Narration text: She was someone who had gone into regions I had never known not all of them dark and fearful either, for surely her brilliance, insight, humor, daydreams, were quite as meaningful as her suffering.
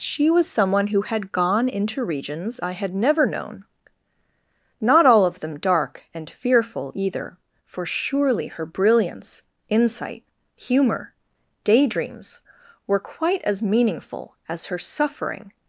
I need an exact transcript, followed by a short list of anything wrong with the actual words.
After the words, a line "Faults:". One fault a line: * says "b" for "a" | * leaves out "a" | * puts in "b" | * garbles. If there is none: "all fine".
She was someone who had gone into regions I had never known not all of them dark and fearful either, for surely her brilliance, insight, humor, daydreams, were quite as meaningful as her suffering.
Faults:
all fine